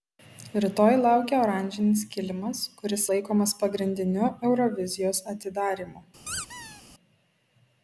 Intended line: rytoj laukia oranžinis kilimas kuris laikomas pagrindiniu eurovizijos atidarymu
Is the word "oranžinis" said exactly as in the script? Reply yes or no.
yes